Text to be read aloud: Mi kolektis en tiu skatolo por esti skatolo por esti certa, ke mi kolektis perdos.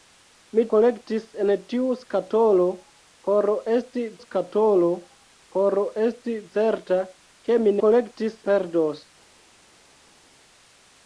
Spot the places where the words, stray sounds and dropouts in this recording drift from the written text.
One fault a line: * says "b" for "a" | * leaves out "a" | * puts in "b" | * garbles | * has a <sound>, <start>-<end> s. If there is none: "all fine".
all fine